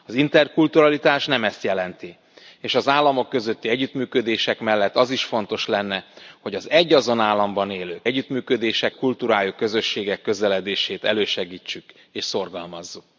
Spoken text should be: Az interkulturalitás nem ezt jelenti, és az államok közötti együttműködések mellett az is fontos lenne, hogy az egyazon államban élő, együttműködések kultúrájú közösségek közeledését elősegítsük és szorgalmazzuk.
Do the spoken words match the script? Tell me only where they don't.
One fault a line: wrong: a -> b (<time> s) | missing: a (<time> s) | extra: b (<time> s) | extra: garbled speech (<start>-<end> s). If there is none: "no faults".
no faults